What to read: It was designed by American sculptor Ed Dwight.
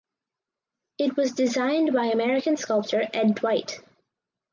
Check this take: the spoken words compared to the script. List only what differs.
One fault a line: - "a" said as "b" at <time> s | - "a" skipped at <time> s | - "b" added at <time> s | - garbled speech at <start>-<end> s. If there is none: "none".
none